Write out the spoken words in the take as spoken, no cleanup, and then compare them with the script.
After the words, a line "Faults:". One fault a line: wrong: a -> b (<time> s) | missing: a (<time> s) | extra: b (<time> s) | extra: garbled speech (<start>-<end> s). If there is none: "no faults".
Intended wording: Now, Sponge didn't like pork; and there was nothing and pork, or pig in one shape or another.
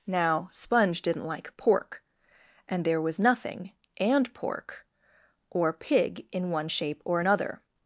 Now, Sponge didn't like pork; and there was nothing and pork, or pig in one shape or another.
Faults:
no faults